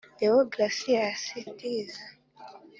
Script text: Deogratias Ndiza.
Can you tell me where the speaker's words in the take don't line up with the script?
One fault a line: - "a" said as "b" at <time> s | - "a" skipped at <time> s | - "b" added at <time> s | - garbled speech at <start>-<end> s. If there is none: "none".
none